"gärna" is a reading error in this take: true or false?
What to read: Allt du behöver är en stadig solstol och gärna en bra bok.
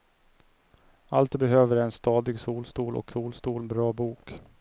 true